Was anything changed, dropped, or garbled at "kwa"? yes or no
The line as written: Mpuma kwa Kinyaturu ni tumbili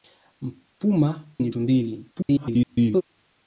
yes